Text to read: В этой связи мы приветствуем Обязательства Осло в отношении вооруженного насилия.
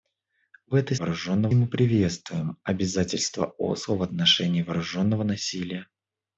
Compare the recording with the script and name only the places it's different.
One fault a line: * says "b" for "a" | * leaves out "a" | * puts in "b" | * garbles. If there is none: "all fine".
* says "вооруженного" for "связи"